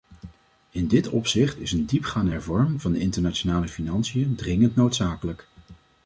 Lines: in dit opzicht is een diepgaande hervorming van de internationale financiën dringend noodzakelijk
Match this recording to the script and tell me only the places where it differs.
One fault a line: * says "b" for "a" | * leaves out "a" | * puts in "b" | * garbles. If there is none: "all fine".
all fine